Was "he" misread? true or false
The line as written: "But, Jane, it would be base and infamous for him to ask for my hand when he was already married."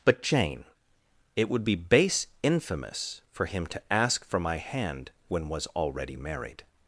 true